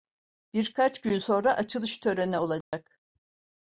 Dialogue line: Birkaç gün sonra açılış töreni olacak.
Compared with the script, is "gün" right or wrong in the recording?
right